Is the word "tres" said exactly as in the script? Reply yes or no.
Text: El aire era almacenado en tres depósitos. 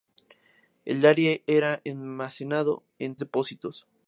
no